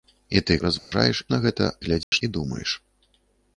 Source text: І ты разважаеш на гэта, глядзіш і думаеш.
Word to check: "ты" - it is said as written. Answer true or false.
true